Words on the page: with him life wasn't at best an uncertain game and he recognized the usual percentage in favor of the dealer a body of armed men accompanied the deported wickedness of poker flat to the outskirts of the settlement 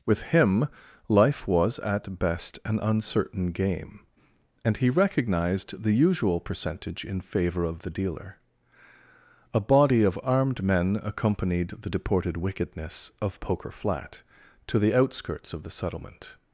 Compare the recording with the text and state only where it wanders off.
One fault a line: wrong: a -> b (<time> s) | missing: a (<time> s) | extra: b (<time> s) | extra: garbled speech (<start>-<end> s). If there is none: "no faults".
wrong: wasn't -> was (1.5 s)